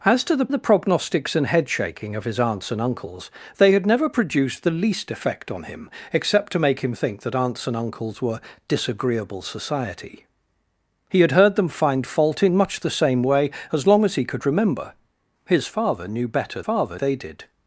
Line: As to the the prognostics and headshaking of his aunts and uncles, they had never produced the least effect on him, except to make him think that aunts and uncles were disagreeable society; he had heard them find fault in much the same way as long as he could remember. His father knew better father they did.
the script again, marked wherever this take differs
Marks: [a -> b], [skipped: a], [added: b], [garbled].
As to the the prognostics and headshaking of his aunts and uncles, they had never produced the least effect on him, except to make him think that aunts and uncles were disagreeable society; he had heard them find fault in much the same way as long as he could remember. His father knew better father they did.